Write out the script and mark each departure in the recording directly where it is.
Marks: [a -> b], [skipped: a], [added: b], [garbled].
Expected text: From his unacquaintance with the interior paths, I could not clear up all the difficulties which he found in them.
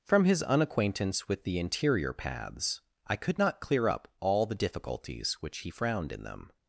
From his unacquaintance with the interior paths, I could not clear up all the difficulties which he [found -> frowned] in them.